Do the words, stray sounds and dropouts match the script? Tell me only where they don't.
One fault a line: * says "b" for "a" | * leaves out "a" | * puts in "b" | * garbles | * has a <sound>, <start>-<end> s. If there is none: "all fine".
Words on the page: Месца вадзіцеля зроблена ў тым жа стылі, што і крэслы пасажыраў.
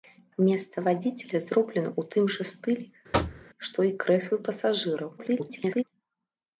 * has a thud, 3.1-3.5 s
* garbles